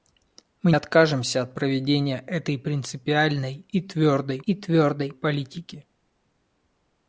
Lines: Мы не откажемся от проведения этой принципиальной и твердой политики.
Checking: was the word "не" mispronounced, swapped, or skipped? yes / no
yes